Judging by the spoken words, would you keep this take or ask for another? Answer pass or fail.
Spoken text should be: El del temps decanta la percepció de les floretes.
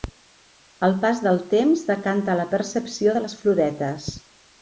fail